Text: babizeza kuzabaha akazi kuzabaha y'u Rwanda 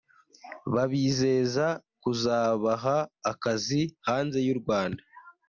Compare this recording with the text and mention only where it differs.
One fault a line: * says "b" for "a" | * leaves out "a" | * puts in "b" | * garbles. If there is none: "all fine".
* says "hanze" for "kuzabaha"